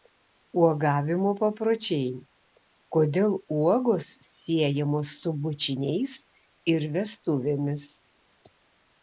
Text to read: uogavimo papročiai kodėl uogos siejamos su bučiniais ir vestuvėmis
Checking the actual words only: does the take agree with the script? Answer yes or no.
yes